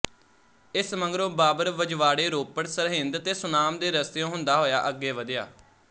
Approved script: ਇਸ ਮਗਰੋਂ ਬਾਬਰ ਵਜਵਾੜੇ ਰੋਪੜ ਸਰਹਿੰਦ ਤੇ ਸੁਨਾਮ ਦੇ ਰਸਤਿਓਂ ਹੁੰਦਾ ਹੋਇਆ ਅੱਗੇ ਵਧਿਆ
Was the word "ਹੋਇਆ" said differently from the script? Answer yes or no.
no